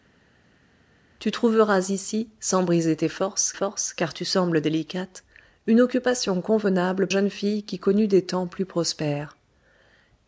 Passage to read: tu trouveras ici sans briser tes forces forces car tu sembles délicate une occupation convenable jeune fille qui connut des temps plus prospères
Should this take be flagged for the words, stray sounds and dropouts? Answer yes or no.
no